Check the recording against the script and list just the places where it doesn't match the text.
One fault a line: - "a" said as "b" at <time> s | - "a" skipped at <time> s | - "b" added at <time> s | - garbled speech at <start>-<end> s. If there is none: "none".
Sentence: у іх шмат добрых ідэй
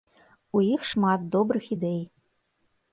none